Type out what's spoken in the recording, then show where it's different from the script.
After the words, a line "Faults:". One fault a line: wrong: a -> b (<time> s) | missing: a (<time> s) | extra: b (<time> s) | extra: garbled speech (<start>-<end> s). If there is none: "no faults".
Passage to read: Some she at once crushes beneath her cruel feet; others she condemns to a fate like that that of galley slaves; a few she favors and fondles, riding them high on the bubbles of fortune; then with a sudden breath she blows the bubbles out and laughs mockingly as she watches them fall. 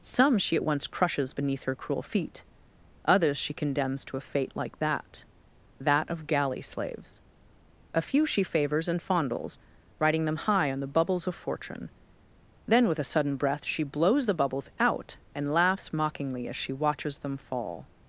Some she at once crushes beneath her cruel feet; others she condemns to a fate like that that of galley slaves; a few she favors and fondles, riding them high on the bubbles of fortune; then with a sudden breath she blows the bubbles out and laughs mockingly as she watches them fall.
Faults:
no faults